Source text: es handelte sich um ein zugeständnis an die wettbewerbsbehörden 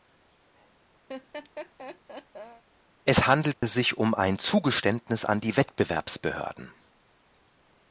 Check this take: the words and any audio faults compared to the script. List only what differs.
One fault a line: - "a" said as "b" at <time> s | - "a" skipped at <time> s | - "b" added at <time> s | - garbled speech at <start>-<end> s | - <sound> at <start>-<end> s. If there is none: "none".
- laugh at 1.1-2.6 s
- dropout at 3.5-3.6 s